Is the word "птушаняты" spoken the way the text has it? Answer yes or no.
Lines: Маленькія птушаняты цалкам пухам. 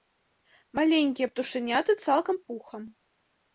yes